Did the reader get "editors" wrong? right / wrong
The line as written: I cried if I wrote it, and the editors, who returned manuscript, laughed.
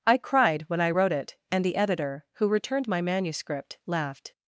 wrong